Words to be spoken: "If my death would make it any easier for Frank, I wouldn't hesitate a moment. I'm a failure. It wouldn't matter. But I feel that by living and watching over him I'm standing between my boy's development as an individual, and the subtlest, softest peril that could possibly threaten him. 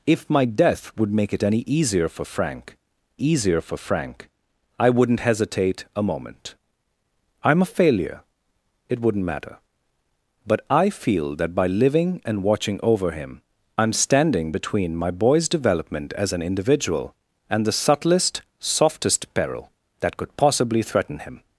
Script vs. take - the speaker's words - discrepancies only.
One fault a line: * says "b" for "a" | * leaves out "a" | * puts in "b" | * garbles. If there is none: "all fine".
* puts in "easier for Frank"